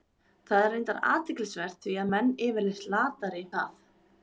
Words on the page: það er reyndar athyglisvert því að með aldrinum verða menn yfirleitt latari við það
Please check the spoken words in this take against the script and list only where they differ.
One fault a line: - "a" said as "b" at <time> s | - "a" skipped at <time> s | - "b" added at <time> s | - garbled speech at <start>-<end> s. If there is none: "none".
- "með aldrinum verða" skipped at 2.1 s
- "við" skipped at 3.5 s